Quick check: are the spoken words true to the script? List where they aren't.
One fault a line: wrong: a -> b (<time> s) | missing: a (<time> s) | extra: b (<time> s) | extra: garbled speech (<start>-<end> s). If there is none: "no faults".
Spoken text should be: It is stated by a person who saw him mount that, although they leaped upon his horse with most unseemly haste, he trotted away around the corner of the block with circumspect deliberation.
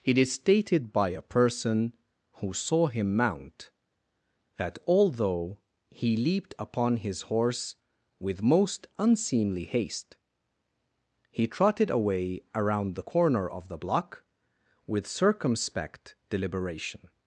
wrong: they -> he (5.9 s)